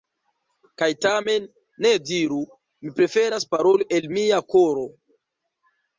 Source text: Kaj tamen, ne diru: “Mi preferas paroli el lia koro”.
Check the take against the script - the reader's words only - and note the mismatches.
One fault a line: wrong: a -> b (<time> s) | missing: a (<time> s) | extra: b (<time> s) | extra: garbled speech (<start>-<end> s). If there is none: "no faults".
wrong: lia -> mia (4.2 s)